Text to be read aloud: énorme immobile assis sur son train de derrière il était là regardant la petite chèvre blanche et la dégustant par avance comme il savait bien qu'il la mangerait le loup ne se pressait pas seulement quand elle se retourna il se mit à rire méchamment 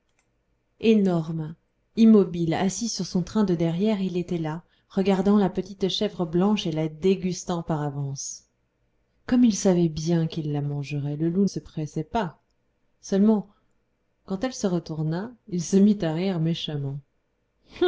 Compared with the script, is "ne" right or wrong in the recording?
wrong